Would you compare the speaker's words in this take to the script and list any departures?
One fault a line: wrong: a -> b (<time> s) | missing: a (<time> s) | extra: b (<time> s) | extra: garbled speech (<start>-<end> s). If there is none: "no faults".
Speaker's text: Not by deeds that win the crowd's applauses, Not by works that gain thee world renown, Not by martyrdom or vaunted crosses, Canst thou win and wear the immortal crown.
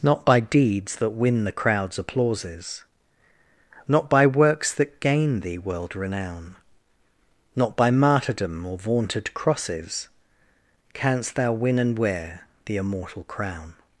no faults